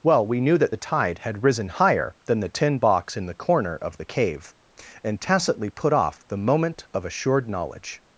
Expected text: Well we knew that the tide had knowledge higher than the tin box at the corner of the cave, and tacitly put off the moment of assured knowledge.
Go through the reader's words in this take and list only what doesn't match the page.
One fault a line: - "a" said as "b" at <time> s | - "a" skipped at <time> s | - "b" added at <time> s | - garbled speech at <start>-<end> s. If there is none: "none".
- "knowledge" said as "risen" at 1.4 s
- "at" said as "in" at 3.2 s